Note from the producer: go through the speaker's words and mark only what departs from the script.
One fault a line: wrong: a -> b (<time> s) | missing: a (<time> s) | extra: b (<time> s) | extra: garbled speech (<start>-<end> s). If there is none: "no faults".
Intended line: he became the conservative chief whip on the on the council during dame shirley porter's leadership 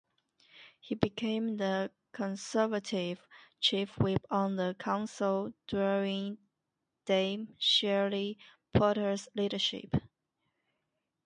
missing: on the (4.8 s)